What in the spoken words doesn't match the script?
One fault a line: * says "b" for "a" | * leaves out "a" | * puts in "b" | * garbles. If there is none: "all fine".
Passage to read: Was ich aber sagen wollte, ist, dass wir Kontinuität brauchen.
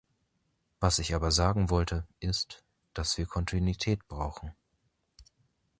all fine